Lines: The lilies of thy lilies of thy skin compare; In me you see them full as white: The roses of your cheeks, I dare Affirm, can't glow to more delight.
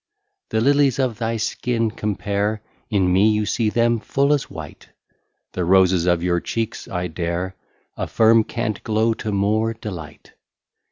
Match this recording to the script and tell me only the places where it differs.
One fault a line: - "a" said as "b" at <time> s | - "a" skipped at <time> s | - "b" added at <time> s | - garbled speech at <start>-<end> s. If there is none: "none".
- "lilies of thy" skipped at 1.4 s